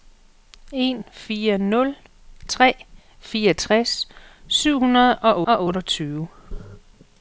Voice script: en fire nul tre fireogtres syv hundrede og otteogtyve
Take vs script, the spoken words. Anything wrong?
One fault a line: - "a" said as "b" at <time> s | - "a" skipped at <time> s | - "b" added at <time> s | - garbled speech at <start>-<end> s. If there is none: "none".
- "og" added at 5.4 s